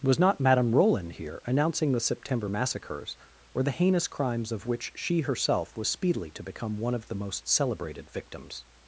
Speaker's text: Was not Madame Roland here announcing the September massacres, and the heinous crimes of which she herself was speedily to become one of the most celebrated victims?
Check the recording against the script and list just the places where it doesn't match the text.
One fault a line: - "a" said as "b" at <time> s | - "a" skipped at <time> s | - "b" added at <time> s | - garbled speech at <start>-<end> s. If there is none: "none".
- "and" said as "or" at 3.5 s